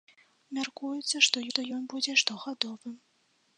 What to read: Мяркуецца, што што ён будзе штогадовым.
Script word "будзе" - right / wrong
right